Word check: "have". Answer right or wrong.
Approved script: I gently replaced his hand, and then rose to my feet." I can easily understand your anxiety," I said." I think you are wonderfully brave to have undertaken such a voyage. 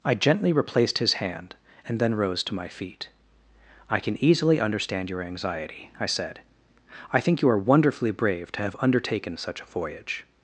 right